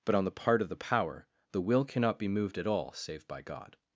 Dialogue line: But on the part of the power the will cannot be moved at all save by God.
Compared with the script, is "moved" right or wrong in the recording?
right